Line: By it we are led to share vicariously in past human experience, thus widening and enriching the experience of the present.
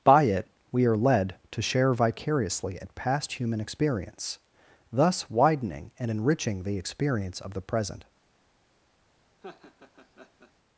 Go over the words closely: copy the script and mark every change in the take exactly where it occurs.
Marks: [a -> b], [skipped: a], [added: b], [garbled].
By it we are led to share vicariously [in -> at] past human experience, thus widening and enriching the experience of the present.